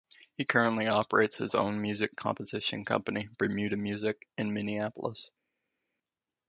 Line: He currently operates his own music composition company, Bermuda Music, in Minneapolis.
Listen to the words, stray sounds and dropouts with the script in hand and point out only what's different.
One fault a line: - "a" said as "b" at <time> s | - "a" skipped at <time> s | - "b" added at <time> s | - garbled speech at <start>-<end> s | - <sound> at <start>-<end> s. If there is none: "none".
none